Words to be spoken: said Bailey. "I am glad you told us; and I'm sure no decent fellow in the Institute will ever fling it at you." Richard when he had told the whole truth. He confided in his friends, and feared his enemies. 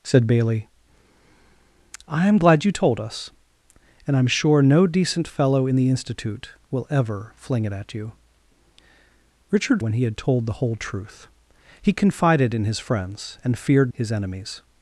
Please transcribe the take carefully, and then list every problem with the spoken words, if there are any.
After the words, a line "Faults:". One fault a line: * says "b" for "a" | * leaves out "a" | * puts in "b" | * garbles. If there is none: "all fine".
said Bailey. "I am glad you told us; and I'm sure no decent fellow in the Institute will ever fling it at you." Richard when he had told the whole truth. He confided in his friends, and feared his enemies.
Faults:
all fine